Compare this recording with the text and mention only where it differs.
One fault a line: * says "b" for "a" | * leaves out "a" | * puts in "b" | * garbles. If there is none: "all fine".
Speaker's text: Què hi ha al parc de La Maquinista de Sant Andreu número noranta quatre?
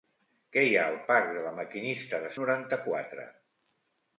* leaves out "Sant Andreu número"